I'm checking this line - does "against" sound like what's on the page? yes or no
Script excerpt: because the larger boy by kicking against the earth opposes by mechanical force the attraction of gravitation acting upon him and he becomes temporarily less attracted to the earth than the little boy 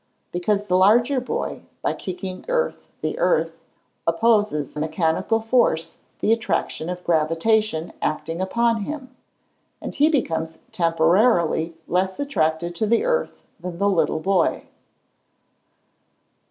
no